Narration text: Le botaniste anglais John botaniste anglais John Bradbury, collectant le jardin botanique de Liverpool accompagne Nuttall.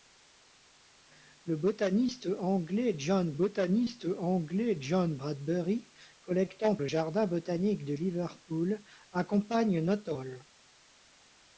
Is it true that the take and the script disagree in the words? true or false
false